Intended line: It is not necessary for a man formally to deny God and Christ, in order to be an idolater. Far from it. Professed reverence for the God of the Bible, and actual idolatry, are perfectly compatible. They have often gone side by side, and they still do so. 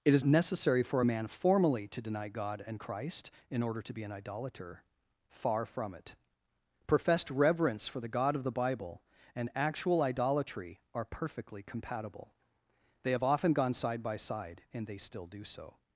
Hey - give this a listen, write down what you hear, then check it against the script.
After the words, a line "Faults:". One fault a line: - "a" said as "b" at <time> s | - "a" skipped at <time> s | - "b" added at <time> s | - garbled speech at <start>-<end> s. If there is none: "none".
It is necessary for a man formally to deny God and Christ, in order to be an idolater. Far from it. Professed reverence for the God of the Bible, and actual idolatry, are perfectly compatible. They have often gone side by side, and they still do so.
Faults:
- "not" skipped at 0.2 s